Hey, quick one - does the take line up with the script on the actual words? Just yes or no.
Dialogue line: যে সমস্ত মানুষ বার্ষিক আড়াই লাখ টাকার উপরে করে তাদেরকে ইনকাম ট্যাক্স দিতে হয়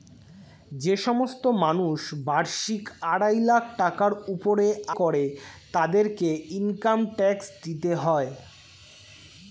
yes